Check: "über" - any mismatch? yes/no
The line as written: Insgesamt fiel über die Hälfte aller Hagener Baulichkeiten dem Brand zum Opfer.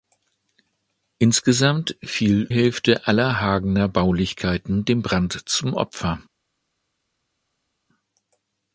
yes